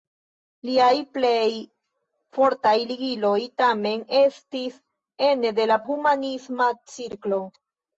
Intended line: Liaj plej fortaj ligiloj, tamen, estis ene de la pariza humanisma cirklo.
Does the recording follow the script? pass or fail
fail